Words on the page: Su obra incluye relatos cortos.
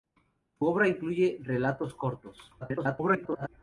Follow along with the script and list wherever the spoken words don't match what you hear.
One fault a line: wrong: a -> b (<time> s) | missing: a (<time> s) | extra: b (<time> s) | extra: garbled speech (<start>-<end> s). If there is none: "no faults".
extra: garbled speech (2.6-3.5 s)